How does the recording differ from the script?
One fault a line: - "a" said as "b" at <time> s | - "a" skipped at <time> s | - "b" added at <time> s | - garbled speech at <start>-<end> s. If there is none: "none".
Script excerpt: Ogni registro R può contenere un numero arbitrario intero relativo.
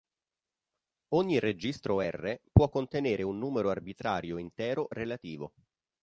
none